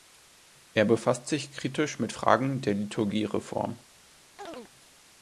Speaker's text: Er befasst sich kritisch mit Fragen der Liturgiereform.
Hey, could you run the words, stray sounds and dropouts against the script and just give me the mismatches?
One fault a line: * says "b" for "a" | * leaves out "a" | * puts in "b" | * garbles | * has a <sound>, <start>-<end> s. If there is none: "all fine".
* has a chirp, 4.4-4.7 s